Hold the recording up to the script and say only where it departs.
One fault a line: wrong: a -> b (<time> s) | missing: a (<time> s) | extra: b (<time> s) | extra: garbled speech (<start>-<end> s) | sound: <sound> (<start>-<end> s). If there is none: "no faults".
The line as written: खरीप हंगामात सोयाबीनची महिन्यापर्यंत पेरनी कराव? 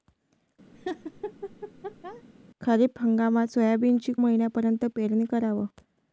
sound: laugh (0.7-2.2 s)